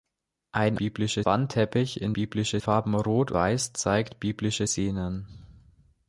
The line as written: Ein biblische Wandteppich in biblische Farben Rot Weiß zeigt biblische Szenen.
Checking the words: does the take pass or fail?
pass